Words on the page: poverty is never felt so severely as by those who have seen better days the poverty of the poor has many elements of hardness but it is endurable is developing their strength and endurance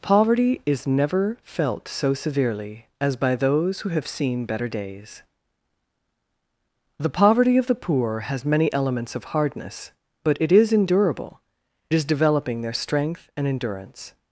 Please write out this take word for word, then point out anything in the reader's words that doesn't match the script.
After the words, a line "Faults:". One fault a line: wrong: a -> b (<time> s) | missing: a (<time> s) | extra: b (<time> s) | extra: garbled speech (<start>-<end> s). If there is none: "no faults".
poverty is never felt so severely as by those who have seen better days the poverty of the poor has many elements of hardness but it is endurable is developing their strength and endurance
Faults:
no faults